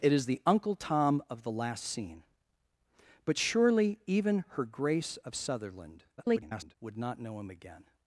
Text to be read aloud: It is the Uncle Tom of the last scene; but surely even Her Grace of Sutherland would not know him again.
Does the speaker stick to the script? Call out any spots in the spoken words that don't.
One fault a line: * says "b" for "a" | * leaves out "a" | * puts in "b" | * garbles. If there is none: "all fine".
* garbles